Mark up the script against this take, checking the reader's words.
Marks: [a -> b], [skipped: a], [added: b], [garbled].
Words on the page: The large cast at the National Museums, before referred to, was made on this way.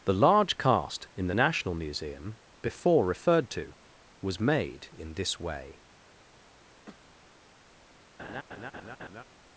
The large cast [at -> in] the National [Museums, -> Museum] before referred to, was made [on -> in] this way.